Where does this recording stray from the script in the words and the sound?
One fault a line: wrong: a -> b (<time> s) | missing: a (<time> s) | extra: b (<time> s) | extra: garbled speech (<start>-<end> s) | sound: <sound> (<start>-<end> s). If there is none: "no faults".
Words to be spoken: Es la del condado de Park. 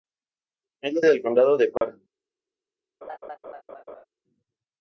sound: dropout (1.8-1.8 s)
sound: laugh (3.0-4.0 s)